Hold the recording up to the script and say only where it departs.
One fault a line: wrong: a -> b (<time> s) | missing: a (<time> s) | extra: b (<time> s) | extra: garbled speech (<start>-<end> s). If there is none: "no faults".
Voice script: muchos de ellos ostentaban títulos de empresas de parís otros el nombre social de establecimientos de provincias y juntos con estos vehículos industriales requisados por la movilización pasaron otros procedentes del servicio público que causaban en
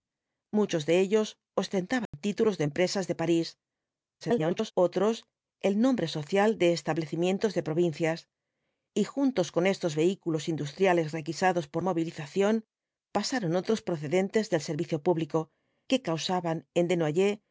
extra: garbled speech (4.2-4.7 s)
missing: la (11.8 s)